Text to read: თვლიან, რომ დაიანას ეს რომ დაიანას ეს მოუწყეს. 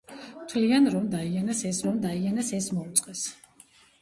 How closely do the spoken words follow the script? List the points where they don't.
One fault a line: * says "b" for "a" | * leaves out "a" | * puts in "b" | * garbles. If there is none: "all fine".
all fine